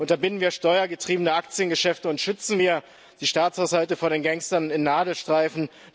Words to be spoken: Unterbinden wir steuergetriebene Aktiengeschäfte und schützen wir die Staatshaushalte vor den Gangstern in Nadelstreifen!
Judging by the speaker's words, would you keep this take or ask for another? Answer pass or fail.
pass